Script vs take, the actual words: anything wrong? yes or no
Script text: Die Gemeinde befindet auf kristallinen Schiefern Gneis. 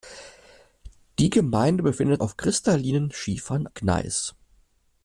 no